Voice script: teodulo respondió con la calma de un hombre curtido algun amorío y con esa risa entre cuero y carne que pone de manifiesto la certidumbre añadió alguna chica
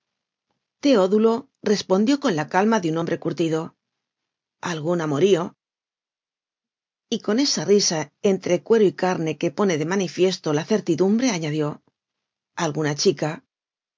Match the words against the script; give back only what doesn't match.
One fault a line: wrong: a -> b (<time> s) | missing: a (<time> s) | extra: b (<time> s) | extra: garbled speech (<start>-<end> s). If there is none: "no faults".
no faults